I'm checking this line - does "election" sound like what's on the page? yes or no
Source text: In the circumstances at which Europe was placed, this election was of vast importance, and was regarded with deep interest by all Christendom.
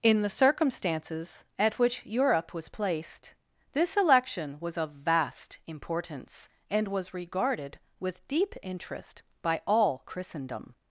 yes